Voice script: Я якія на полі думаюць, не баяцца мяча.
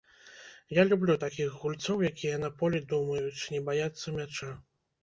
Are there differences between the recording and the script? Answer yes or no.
yes